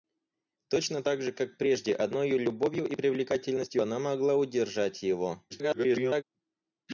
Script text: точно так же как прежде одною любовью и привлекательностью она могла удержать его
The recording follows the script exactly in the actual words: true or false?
false